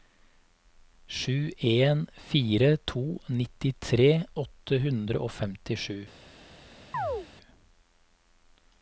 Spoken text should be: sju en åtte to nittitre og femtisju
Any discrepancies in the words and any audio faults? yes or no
yes